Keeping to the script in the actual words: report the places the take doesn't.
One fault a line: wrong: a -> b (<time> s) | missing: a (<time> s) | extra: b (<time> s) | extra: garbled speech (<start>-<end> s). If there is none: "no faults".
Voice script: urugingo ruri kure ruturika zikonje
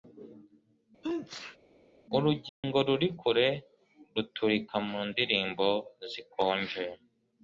extra: mu ndirimbo (4.9 s)